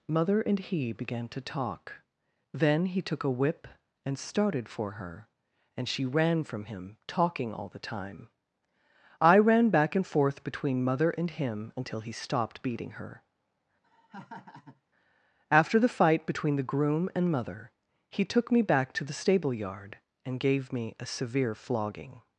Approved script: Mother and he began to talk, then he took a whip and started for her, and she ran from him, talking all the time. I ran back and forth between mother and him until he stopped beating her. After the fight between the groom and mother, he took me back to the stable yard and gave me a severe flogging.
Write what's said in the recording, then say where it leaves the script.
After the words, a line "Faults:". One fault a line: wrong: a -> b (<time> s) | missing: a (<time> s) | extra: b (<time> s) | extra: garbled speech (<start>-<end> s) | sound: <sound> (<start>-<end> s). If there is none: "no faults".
Mother and he began to talk, then he took a whip and started for her, and she ran from him, talking all the time. I ran back and forth between mother and him until he stopped beating her. After the fight between the groom and mother, he took me back to the stable yard and gave me a severe flogging.
Faults:
sound: laugh (13.8-14.8 s)